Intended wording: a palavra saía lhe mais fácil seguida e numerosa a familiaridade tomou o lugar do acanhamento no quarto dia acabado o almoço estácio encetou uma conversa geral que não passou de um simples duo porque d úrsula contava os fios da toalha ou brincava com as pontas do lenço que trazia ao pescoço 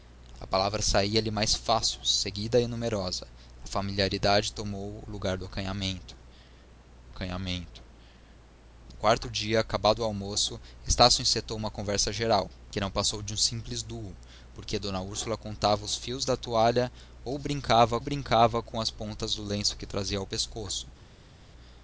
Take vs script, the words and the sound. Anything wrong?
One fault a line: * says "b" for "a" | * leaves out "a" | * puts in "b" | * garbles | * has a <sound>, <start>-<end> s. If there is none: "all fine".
* puts in "acanhamento"
* puts in "brincava"